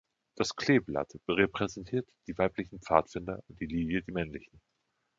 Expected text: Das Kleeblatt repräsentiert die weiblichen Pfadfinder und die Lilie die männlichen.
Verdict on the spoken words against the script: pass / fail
pass